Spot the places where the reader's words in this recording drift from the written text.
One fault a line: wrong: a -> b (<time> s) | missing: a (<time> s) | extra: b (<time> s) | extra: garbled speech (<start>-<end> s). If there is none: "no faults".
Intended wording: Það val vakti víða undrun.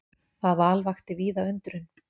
no faults